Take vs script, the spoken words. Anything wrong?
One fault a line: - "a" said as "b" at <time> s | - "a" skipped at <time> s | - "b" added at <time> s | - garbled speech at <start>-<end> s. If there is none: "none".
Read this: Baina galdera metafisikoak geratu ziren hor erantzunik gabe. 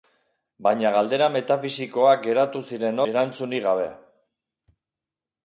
- "hor" skipped at 3.0 s